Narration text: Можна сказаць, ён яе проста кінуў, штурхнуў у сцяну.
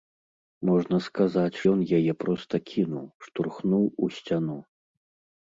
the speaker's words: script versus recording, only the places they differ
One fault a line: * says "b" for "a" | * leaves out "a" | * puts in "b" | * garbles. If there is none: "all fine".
all fine